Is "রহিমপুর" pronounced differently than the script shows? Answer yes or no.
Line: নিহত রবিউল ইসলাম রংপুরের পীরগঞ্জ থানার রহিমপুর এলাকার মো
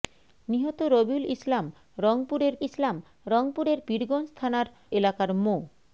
yes